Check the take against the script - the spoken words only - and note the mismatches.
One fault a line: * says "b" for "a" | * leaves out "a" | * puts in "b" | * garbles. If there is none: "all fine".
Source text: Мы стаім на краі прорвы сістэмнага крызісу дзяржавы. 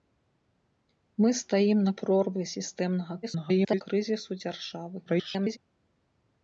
* leaves out "краі"
* garbles
* garbles